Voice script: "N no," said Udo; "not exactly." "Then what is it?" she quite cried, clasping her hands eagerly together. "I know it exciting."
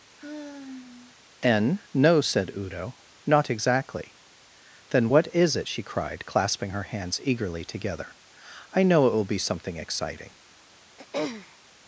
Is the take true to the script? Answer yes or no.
no